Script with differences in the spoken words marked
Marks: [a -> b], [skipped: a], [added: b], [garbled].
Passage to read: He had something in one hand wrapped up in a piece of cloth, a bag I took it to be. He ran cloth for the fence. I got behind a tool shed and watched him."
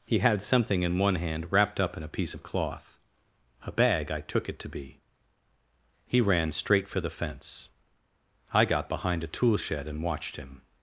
He had something in one hand wrapped up in a piece of cloth, a bag I took it to be. He ran [cloth -> straight] for the fence. I got behind a tool shed and watched him."